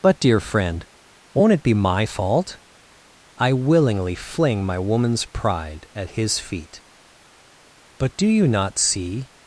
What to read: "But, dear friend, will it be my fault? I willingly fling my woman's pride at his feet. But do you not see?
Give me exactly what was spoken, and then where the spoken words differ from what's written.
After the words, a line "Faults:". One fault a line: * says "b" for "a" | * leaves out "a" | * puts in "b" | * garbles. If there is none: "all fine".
"But, dear friend, won't it be my fault? I willingly fling my woman's pride at his feet. But do you not see?
Faults:
* says "won't" for "will"